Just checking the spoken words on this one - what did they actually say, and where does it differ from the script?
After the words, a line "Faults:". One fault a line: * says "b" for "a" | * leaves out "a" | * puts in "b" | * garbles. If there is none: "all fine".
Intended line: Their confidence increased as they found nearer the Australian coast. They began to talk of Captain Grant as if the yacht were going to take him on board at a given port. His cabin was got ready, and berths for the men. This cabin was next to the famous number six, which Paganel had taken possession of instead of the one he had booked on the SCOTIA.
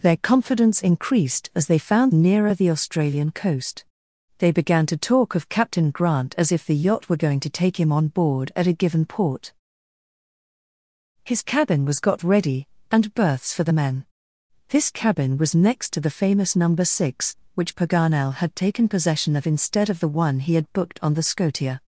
Their confidence increased as they found nearer the Australian coast. They began to talk of Captain Grant as if the yacht were going to take him on board at a given port. His cabin was got ready, and berths for the men. This cabin was next to the famous number six, which Paganel had taken possession of instead of the one he had booked on the SCOTIA.
Faults:
all fine